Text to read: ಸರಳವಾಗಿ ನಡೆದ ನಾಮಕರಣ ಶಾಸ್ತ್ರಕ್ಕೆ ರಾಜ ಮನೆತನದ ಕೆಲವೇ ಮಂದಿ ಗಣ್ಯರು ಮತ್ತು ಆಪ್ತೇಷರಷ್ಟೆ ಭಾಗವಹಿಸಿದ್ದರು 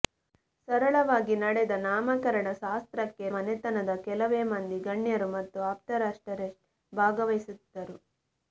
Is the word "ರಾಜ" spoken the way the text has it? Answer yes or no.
no